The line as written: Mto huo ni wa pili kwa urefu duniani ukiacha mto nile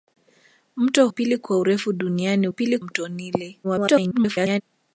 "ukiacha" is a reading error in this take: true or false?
true